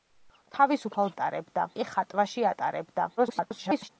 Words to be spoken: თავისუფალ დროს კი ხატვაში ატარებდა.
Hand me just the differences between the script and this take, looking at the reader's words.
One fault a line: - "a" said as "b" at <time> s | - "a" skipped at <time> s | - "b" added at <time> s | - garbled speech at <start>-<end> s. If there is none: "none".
- "დროს" said as "ატარებდა" at 1.1 s
- garbled speech at 3.2-3.9 s